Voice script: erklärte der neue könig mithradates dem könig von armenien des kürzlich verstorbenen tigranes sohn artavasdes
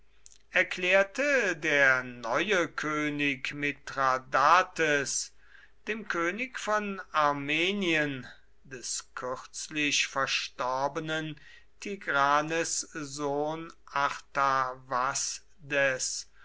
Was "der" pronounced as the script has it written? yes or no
yes